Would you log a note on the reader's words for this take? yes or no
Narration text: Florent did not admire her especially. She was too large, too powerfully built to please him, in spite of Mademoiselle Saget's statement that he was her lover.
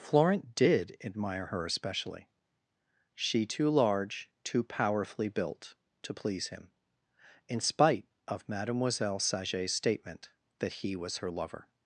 yes